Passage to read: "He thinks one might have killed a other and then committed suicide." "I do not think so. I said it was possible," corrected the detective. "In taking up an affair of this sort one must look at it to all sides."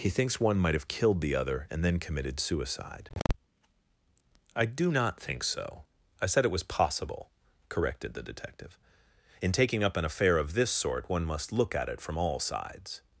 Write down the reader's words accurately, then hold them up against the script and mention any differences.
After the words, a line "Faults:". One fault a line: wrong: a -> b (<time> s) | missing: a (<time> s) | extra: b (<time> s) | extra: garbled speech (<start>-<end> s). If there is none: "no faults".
"He thinks one might have killed the other and then committed suicide." "I do not think so. I said it was possible," corrected the detective. "In taking up an affair of this sort one must look at it from all sides."
Faults:
wrong: a -> the (1.2 s)
wrong: to -> from (12.0 s)